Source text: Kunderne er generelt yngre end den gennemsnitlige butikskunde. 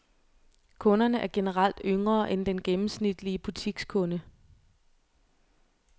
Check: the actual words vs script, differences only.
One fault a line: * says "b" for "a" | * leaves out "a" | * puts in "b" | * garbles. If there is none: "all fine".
all fine